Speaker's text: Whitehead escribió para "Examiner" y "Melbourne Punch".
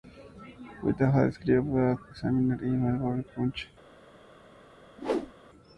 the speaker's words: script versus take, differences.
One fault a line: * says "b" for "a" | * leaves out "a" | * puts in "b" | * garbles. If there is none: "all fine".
all fine